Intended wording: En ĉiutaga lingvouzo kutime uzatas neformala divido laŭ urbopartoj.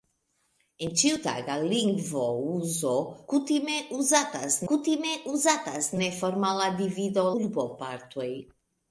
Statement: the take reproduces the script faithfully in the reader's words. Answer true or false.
false